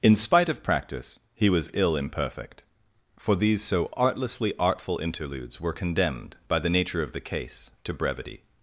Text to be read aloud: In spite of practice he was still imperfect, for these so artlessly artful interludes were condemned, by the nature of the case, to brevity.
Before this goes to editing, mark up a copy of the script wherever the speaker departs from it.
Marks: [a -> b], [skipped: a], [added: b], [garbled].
In spite of practice he was [still -> ill] imperfect, for these so artlessly artful interludes were condemned, by the nature of the case, to brevity.